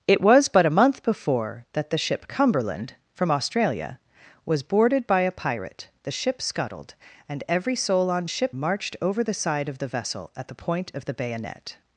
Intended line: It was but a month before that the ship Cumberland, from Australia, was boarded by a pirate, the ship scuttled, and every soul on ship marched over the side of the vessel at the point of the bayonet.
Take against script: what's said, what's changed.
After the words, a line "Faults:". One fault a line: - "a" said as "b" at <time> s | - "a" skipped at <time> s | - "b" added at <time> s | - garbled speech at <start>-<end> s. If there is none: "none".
It was but a month before that the ship Cumberland, from Australia, was boarded by a pirate, the ship scuttled, and every soul on ship marched over the side of the vessel at the point of the bayonet.
Faults:
none